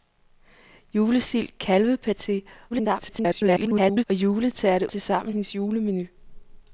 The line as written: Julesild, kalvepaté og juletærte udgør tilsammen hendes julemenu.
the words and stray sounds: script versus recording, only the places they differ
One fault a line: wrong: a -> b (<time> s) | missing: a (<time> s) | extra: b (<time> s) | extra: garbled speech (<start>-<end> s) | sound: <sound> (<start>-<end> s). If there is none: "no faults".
extra: garbled speech (2.7-4.0 s)
missing: udgør (4.9 s)